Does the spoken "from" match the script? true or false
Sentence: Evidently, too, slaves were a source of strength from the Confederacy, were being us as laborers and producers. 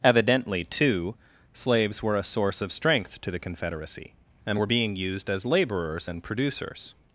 false